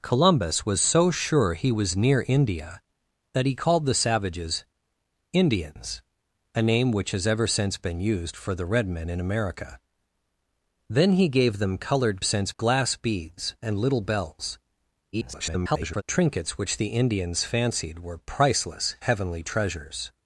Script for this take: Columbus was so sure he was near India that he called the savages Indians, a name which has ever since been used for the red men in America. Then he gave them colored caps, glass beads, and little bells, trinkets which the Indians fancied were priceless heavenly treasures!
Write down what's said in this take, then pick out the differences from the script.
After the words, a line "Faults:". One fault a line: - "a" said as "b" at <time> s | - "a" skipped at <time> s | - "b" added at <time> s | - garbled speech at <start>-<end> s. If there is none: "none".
Columbus was so sure he was near India that he called the savages Indians, a name which has ever since been used for the red men in America. Then he gave them colored since, glass beads, and little bells, [garbled] trinkets which the Indians fancied were priceless heavenly treasures!
Faults:
- "caps" said as "since" at 12.2 s
- garbled speech at 15.1-16.0 s